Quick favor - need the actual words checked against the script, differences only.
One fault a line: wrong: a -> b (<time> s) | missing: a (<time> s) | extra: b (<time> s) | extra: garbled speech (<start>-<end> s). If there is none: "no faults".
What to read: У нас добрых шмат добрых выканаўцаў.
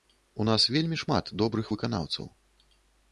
wrong: добрых -> вельмі (0.7 s)